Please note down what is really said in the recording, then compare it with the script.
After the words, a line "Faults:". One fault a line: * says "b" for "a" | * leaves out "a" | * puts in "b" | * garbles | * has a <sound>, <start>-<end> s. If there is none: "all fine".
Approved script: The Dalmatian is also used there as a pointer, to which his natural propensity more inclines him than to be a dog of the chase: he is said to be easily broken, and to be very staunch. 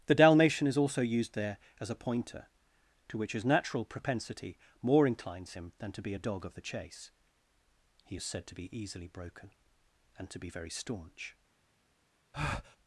The Dalmatian is also used there as a pointer, to which his natural propensity more inclines him than to be a dog of the chase: he is said to be easily broken, and to be very staunch.
Faults:
* has a breath, 12.3-12.8 s